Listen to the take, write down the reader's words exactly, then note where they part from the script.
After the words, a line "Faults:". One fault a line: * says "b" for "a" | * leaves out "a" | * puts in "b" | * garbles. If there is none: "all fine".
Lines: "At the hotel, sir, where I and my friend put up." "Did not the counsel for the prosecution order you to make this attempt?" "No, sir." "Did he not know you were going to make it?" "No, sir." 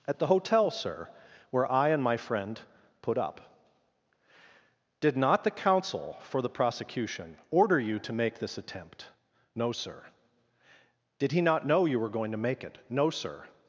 "At the hotel, sir, where I and my friend put up." "Did not the counsel for the prosecution order you to make this attempt?" "No, sir." "Did he not know you were going to make it?" "No, sir."
Faults:
all fine